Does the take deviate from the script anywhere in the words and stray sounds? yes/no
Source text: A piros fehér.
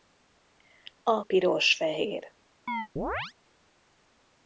yes